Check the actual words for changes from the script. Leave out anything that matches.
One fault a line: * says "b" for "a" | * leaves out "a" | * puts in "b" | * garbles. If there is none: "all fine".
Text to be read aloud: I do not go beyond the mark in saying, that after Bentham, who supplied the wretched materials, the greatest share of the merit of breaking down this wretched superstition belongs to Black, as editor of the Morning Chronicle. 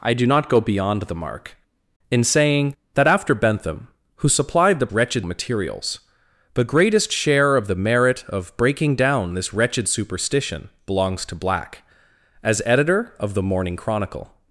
all fine